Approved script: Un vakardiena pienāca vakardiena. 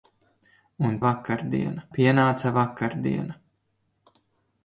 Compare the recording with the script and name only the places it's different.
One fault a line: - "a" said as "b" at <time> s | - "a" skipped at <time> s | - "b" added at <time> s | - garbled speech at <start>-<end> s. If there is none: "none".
none